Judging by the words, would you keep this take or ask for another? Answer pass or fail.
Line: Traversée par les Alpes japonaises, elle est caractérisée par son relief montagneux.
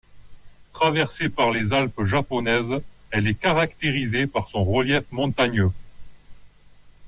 pass